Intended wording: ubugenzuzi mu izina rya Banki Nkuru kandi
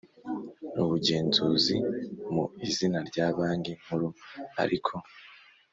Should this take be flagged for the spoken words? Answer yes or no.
yes